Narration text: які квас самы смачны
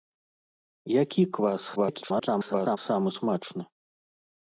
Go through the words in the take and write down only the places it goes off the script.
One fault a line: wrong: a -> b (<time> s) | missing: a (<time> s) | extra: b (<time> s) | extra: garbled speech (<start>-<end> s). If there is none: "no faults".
extra: garbled speech (1.8-2.8 s)